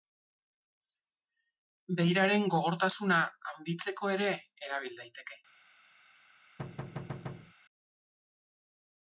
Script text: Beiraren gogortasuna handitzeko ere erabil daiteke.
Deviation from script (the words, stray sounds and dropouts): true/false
true